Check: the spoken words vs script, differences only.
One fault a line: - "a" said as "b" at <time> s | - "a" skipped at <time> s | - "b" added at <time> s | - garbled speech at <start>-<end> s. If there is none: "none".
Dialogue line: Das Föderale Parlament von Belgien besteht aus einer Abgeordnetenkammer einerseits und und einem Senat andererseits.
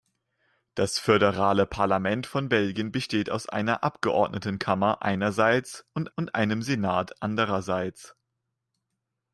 none